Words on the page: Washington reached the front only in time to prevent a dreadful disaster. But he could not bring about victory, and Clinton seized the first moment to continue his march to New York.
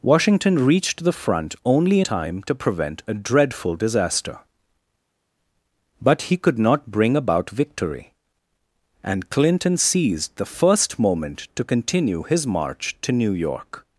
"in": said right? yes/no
no